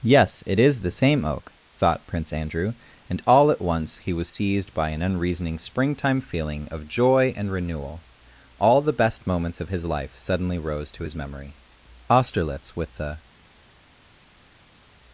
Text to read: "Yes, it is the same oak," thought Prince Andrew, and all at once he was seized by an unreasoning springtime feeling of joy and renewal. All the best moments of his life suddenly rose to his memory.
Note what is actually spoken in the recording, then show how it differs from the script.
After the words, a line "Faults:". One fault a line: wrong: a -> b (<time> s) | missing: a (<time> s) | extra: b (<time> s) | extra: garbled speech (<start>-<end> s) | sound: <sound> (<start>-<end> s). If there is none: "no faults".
"Yes, it is the same oak," thought Prince Andrew, and all at once he was seized by an unreasoning springtime feeling of joy and renewal. All the best moments of his life suddenly rose to his memory. Austerlitz with the
Faults:
extra: Austerlitz with the (12.1 s)